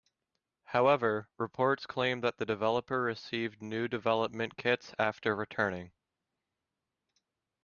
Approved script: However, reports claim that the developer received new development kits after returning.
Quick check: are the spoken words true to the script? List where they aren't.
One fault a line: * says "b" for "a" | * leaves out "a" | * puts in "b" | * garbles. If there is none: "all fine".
all fine